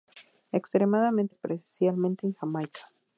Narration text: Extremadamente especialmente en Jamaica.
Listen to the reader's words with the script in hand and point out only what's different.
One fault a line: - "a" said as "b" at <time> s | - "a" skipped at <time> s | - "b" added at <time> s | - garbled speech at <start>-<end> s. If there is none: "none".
none